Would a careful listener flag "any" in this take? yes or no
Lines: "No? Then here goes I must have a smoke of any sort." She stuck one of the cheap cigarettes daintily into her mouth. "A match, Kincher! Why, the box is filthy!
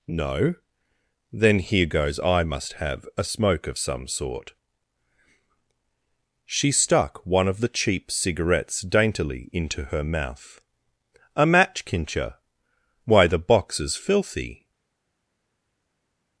yes